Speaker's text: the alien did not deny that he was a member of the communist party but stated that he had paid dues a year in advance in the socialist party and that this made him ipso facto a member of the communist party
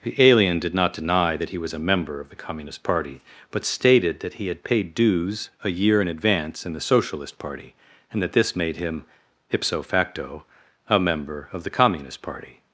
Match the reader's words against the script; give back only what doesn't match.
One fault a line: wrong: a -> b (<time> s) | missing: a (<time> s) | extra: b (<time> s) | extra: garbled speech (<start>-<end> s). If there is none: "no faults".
no faults